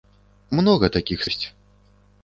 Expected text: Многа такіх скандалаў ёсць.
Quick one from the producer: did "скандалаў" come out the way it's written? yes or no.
no